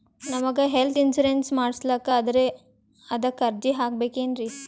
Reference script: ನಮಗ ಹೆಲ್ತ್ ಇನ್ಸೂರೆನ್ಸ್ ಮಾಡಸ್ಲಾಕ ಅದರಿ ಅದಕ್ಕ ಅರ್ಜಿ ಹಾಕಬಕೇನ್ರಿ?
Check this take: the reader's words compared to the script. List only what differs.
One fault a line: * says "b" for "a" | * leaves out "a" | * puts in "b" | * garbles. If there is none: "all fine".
all fine